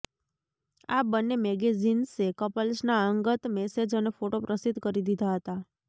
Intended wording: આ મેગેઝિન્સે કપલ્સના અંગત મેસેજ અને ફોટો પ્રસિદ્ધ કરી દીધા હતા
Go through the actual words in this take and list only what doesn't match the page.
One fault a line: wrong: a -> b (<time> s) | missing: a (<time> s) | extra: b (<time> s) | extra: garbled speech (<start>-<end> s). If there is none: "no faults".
extra: બંને (1.1 s)